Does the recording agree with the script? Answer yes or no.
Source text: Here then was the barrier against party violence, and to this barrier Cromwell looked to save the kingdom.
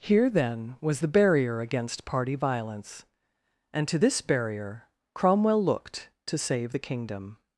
yes